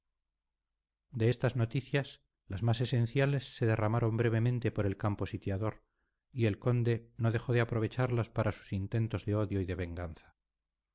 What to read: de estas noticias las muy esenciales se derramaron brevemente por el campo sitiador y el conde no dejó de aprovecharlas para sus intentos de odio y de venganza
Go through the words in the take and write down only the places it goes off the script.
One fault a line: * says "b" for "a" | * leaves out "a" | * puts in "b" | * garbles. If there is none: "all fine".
* says "más" for "muy"